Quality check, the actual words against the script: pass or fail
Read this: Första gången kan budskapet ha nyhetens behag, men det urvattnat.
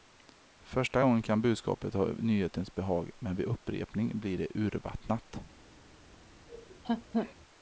fail